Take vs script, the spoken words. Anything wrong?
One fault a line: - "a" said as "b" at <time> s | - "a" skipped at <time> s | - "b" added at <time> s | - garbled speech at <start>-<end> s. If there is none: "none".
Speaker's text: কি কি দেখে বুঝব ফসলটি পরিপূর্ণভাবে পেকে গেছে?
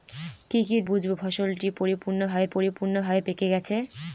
- "দেখে" skipped at 0.8 s
- "পরিপূর্ণভাবে" added at 2.5 s